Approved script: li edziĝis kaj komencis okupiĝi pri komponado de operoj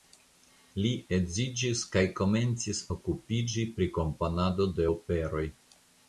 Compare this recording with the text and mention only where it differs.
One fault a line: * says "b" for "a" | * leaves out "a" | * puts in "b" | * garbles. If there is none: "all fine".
all fine